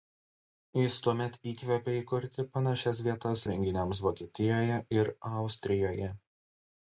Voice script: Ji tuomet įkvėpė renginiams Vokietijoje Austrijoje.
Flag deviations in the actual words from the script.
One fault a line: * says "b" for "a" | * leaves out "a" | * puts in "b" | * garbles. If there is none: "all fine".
* says "Jis" for "Ji"
* puts in "įkurti panašias vietas"
* puts in "ir"